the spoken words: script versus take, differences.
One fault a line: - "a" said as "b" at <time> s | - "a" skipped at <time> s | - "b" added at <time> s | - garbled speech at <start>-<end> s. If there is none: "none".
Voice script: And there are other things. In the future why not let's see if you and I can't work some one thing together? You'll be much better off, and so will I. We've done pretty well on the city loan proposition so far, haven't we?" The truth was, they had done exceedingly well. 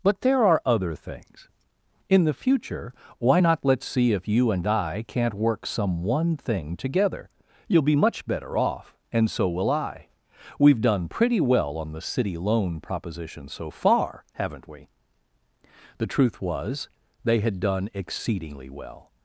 - "And" said as "But" at 0.0 s